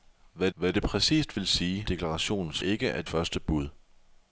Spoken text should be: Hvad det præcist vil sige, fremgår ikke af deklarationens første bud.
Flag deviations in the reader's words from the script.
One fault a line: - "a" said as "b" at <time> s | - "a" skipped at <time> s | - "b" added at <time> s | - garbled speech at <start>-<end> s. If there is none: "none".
- "hvad" added at 0.5 s
- "fremgår" said as "deklarationens" at 1.8 s
- "deklarationens" skipped at 3.1 s